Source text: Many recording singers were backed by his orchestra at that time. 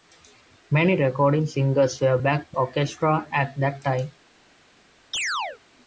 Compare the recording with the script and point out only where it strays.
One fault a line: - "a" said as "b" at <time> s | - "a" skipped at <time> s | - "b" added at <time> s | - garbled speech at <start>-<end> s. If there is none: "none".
- "by his" skipped at 2.6 s